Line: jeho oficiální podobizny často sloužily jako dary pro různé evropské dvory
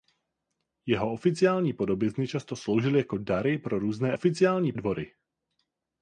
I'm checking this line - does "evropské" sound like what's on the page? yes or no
no